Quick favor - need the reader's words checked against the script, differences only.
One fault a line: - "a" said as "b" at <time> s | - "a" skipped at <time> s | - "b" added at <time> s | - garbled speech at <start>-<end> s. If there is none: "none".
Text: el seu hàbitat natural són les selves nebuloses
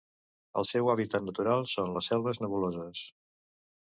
none